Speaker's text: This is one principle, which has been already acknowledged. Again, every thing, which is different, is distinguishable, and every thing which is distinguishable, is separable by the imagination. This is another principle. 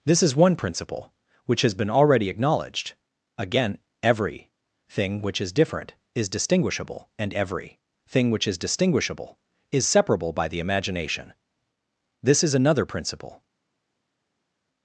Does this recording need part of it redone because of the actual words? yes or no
no